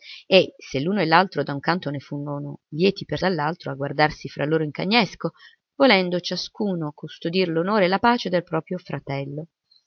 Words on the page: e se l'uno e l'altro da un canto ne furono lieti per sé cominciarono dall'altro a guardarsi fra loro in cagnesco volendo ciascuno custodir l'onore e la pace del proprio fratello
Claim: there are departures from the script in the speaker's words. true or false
true